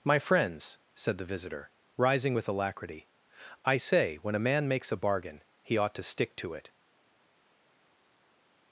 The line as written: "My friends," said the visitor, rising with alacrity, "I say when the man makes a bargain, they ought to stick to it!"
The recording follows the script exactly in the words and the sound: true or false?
false